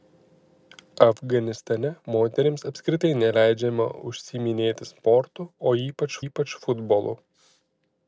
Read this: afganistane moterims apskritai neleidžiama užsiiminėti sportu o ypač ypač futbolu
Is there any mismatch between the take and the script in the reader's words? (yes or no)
no